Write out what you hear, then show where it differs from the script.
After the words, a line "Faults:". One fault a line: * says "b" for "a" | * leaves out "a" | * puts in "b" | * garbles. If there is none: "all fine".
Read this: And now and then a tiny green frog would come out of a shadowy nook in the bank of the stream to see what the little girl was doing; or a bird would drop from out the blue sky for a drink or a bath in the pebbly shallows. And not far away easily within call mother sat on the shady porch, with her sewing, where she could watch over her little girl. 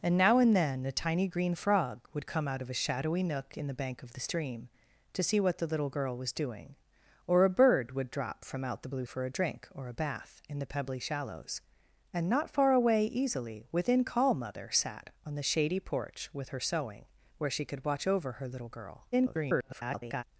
And now and then a tiny green frog would come out of a shadowy nook in the bank of the stream to see what the little girl was doing; or a bird would drop from out the blue for a drink or a bath in the pebbly shallows. And not far away easily within call mother sat on the shady porch, with her sewing, where she could watch over her little girl. [garbled]
Faults:
* leaves out "sky"
* garbles